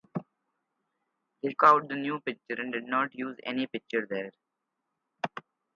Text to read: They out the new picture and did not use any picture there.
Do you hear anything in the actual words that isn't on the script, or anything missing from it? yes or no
no